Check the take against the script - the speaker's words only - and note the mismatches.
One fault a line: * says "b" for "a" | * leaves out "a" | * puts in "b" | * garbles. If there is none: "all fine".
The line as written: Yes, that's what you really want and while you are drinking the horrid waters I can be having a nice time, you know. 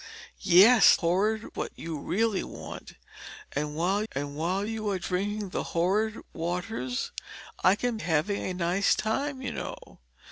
* says "horrid" for "that's"
* puts in "and while"
* leaves out "be"